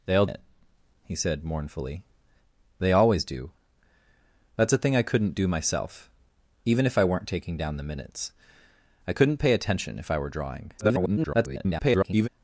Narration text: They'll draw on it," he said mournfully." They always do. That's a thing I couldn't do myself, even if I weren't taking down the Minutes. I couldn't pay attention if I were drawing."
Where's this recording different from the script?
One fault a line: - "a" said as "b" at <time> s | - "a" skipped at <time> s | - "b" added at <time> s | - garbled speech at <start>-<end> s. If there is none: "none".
- "draw on" skipped at 0.2 s
- garbled speech at 10.8-12.3 s